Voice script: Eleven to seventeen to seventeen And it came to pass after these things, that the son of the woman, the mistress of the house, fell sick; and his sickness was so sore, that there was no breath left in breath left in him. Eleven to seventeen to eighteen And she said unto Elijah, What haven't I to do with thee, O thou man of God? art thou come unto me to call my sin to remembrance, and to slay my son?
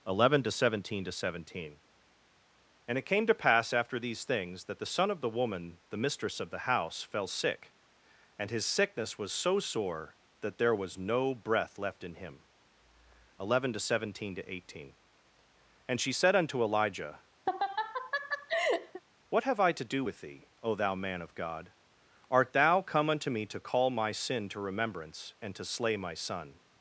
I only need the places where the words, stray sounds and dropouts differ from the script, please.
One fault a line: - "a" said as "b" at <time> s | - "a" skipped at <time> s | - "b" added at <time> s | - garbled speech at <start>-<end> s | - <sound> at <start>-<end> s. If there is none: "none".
- "breath left in" skipped at 12.2 s
- laugh at 17.5-19.0 s
- "haven't" said as "have" at 19.5 s